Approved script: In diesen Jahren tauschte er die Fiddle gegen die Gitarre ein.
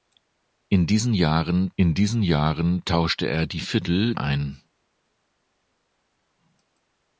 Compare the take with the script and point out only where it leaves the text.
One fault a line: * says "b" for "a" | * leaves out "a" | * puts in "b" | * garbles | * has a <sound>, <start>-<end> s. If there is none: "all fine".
* puts in "in diesen Jahren"
* leaves out "gegen die Gitarre"